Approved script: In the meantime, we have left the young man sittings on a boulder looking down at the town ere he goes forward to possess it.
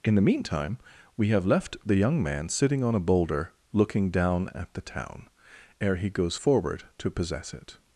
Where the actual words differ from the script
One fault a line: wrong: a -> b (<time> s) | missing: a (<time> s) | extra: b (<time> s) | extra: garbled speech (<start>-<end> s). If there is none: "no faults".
wrong: sittings -> sitting (2.5 s)